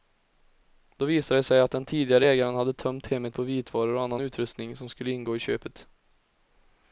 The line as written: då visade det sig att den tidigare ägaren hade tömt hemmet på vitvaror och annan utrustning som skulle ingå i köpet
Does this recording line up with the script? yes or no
yes